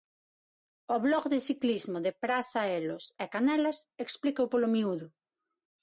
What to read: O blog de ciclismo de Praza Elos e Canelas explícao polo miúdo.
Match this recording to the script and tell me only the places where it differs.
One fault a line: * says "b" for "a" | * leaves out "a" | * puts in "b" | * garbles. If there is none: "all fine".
all fine